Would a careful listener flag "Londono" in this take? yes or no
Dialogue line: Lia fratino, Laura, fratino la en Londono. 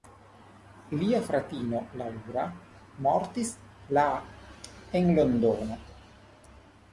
no